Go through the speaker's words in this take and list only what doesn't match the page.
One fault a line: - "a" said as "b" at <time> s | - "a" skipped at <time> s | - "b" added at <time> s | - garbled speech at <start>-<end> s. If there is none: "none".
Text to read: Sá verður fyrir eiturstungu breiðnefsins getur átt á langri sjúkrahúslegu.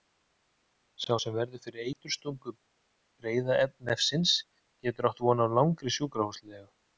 - "sem" added at 1.2 s
- "von" added at 5.3 s